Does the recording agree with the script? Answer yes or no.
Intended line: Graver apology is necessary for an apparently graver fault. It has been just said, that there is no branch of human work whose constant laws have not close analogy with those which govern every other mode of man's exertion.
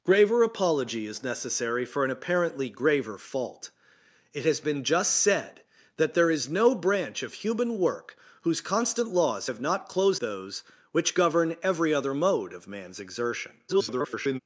no